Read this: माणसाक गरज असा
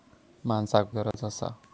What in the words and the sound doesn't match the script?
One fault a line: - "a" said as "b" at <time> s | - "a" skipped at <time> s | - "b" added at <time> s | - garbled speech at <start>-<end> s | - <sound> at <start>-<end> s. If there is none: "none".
- dropout at 1.1-1.1 s